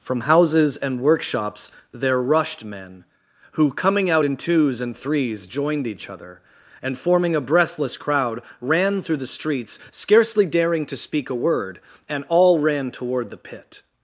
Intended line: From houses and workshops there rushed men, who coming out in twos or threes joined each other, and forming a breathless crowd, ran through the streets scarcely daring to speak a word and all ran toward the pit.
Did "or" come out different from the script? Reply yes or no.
yes